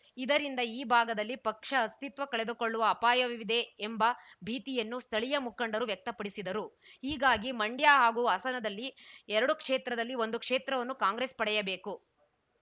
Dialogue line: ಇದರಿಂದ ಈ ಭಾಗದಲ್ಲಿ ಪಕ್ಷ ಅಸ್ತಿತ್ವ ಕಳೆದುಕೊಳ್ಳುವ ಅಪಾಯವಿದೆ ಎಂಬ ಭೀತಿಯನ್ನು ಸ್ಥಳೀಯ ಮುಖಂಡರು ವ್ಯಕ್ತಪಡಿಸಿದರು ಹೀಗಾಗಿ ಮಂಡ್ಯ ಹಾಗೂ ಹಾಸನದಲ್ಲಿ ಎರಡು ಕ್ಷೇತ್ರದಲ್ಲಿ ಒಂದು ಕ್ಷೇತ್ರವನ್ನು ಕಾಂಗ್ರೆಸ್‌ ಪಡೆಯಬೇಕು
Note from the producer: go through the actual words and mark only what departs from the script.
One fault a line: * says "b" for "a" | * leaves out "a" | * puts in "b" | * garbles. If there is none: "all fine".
all fine